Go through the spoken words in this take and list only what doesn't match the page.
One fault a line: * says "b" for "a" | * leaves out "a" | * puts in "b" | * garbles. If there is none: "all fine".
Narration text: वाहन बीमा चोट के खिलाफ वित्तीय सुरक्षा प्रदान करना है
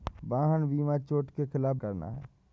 * leaves out "वित्तीय सुरक्षा प्रदान"